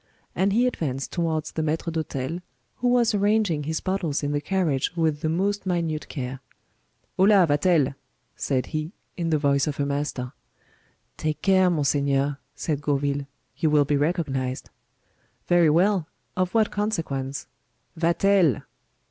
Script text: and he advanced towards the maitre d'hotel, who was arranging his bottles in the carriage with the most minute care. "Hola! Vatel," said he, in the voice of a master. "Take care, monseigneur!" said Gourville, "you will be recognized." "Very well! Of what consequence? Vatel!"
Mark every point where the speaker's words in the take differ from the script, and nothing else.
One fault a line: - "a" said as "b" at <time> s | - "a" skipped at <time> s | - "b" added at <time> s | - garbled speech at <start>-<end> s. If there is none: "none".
none